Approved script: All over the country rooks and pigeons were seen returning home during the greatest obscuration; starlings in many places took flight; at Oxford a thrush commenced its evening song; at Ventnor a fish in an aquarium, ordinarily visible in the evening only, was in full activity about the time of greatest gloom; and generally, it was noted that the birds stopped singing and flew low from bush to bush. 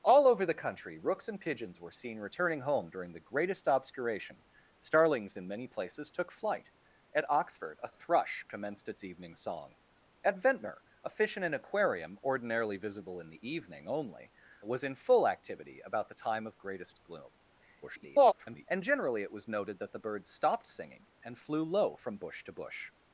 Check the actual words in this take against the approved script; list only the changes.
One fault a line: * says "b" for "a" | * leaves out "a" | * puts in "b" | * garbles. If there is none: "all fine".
* garbles